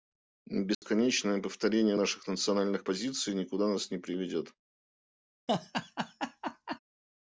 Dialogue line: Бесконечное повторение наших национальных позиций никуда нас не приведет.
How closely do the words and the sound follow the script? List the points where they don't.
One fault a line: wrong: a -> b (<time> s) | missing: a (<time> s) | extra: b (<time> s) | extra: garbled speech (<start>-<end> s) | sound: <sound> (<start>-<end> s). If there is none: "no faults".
sound: dropout (0.7-0.8 s)
sound: laugh (5.5-6.8 s)